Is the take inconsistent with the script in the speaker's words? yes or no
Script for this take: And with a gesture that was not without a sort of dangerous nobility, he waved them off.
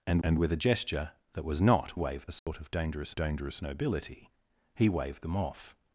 yes